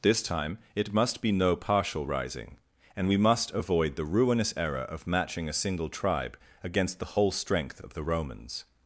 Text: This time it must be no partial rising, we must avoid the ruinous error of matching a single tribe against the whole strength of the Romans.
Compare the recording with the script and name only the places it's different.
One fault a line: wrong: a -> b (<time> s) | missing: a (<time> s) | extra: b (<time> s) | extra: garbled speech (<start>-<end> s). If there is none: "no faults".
extra: and (3.0 s)